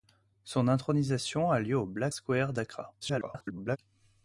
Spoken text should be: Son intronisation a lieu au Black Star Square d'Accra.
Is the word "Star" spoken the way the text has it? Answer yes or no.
no